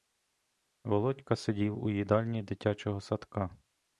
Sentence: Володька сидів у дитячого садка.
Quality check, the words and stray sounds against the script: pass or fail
fail